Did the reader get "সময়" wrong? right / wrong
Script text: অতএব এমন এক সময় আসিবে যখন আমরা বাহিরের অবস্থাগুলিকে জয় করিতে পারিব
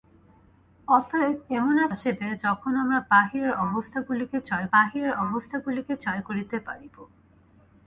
wrong